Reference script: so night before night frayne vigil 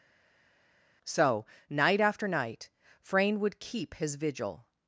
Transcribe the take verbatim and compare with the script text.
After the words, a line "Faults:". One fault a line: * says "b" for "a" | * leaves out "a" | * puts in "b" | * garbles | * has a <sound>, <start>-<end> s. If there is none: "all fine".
so night after night frayne would keep his vigil
Faults:
* says "after" for "before"
* puts in "would keep his"